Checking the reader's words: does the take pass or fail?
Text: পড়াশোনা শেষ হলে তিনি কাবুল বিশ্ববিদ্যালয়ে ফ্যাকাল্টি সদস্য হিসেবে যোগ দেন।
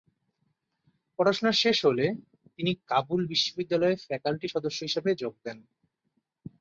pass